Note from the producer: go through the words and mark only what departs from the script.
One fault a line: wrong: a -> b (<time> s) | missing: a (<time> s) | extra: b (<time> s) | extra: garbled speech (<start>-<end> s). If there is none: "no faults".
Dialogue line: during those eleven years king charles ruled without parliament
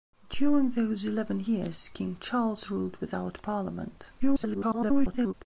extra: garbled speech (4.2-5.3 s)